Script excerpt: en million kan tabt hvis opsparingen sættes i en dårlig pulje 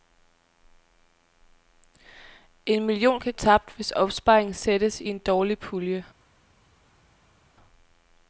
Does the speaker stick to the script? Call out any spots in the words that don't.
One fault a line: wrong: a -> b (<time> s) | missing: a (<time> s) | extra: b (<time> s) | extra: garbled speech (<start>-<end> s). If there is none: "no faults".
no faults